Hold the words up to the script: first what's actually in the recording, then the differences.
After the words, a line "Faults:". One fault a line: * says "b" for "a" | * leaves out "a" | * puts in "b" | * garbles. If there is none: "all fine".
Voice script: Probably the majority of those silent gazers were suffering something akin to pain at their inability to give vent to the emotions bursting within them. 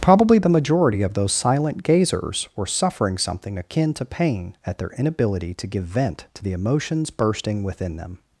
Probably the majority of those silent gazers were suffering something akin to pain at their inability to give vent to the emotions bursting within them.
Faults:
all fine